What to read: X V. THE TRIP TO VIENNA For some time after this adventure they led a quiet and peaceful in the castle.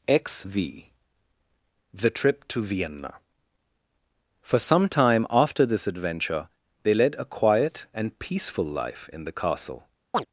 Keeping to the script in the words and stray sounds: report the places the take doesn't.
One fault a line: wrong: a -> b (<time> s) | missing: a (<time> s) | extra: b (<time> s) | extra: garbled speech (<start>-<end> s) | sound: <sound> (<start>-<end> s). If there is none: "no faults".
extra: life (8.7 s)
sound: chirp (10.1-10.3 s)